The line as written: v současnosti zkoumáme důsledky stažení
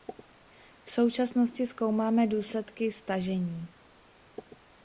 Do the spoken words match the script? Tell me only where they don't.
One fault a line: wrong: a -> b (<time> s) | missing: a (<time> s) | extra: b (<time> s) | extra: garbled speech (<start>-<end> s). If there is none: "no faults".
no faults